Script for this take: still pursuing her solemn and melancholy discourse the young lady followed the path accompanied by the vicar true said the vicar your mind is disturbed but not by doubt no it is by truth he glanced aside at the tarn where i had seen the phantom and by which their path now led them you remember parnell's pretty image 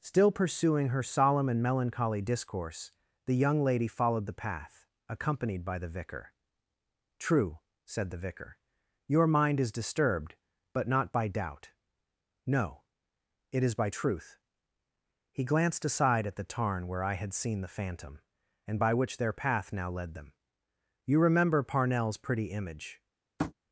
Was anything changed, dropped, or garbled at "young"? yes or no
no